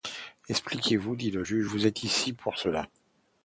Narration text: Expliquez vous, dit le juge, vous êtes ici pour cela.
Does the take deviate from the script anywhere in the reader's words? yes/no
no